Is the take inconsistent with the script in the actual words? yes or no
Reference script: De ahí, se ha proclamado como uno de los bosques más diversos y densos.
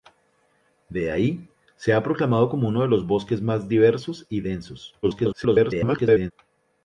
yes